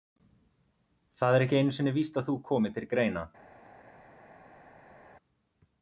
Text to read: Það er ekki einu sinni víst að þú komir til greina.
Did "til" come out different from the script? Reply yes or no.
no